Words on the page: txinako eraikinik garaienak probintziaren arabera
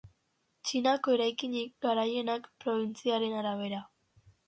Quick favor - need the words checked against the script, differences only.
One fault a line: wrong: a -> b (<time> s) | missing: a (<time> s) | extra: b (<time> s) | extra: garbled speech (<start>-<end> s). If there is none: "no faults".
no faults